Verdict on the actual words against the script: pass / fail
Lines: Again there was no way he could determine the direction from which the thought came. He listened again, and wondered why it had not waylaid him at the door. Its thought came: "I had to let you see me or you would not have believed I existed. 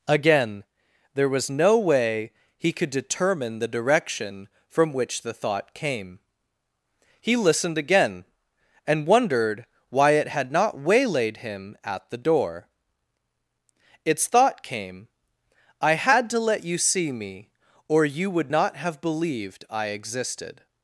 pass